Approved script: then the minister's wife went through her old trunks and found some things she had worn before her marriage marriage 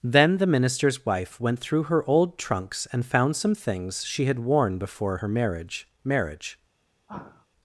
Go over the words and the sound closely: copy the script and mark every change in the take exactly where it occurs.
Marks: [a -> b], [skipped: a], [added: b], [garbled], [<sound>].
then the minister's wife went through her old trunks and found some things she had worn before her marriage marriage [sigh]